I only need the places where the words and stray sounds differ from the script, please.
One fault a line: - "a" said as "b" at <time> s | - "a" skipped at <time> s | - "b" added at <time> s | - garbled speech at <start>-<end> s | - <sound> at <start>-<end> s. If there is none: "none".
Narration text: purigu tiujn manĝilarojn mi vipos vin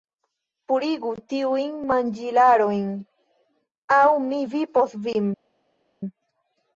- "aŭ" added at 4.0 s